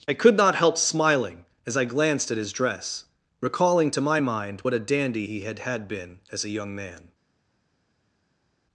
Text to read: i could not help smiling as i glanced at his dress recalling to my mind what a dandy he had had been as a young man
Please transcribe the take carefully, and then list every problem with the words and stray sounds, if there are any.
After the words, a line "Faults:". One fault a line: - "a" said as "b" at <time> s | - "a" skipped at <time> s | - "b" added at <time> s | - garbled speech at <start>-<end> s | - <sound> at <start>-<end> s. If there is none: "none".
i could not help smiling as i glanced at his dress recalling to my mind what a dandy he had had been as a young man
Faults:
none